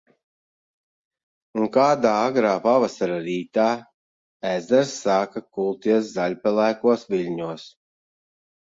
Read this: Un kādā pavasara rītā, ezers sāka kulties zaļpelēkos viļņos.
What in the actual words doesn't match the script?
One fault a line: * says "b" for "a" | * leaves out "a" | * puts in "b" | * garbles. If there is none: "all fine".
* puts in "agrā"